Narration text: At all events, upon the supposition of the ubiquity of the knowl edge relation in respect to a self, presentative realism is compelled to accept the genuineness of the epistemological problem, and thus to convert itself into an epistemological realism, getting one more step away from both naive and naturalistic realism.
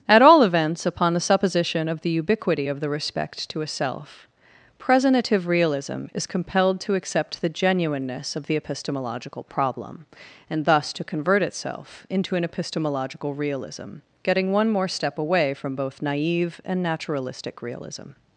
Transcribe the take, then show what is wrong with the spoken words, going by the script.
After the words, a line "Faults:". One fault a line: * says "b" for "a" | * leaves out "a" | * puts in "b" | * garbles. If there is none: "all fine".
At all events, upon the supposition of the ubiquity of the respect to a self, presentative realism is compelled to accept the genuineness of the epistemological problem, and thus to convert itself into an epistemological realism, getting one more step away from both naive and naturalistic realism.
Faults:
* leaves out "knowl edge relation in"